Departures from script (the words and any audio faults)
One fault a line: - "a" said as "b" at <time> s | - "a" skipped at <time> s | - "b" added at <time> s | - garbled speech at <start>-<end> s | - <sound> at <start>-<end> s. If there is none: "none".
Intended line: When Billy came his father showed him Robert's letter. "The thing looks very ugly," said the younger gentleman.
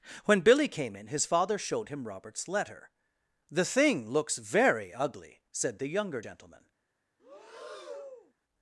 - "in" added at 0.9 s
- breath at 7.2-8.3 s